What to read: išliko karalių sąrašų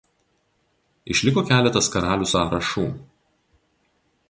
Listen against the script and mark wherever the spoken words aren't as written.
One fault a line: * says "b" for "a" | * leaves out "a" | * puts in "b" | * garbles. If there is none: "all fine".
* puts in "keletas"